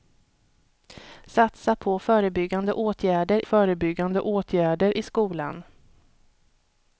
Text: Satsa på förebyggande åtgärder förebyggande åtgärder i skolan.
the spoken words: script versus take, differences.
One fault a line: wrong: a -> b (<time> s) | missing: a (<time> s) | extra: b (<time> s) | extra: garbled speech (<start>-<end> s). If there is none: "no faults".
no faults